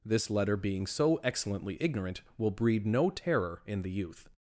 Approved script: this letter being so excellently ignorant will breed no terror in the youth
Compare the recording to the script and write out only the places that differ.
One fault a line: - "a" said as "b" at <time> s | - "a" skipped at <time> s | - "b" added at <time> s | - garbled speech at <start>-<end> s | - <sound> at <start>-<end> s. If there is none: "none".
none